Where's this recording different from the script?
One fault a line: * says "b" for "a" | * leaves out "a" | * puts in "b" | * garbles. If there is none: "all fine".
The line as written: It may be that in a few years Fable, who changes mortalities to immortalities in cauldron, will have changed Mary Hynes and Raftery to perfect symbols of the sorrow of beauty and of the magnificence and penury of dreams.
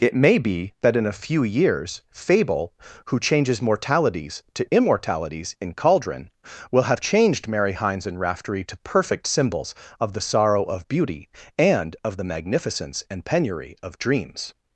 all fine